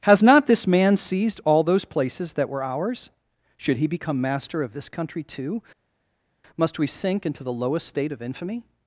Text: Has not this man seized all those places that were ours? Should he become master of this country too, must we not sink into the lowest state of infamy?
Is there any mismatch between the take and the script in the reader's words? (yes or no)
yes